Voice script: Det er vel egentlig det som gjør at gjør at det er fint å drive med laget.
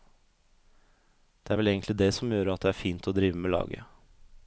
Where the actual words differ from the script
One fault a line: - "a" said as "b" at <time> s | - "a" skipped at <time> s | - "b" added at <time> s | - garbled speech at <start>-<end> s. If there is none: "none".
- "gjør at" skipped at 2.6 s